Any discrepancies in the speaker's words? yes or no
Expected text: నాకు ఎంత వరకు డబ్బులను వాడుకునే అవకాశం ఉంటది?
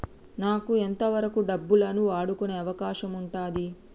no